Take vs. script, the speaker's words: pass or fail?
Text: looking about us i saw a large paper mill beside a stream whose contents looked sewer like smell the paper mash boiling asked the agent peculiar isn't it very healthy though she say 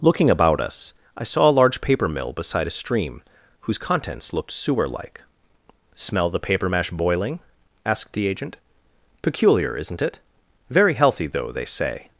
fail